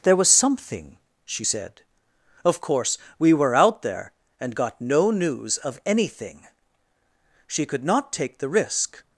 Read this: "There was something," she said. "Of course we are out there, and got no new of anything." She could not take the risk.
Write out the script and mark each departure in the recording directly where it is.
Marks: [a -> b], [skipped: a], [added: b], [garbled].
"There was something," she said. "Of course we [are -> were] out there, and got no [new -> news] of anything." She could not take the risk.